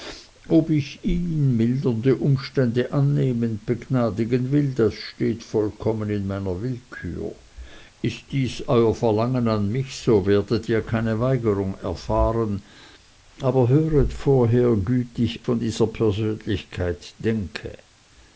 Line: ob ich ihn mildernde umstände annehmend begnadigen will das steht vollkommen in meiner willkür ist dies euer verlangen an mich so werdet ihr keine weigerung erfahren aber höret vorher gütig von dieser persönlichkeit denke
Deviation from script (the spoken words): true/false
false